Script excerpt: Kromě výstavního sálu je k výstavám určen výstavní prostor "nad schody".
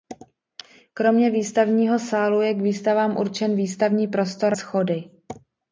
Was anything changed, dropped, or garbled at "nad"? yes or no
yes